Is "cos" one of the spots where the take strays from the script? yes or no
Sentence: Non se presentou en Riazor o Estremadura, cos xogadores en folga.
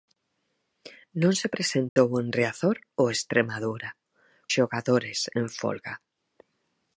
yes